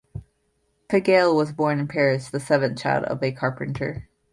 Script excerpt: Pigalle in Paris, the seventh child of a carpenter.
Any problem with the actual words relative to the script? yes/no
yes